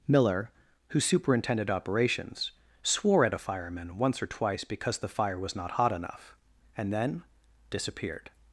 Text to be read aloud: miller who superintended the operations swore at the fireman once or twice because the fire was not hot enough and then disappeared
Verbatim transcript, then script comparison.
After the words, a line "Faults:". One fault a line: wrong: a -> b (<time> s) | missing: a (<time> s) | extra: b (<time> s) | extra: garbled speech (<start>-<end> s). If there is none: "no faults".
miller who superintended operations swore at a fireman once or twice because the fire was not hot enough and then disappeared
Faults:
missing: the (1.7 s)
wrong: the -> a (3.3 s)